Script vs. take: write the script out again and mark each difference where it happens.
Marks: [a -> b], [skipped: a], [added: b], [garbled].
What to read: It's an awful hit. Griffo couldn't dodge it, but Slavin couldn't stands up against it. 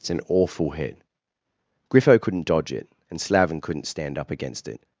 It's an awful hit. Griffo couldn't dodge it, [but -> and] Slavin couldn't [stands -> stand] up against it.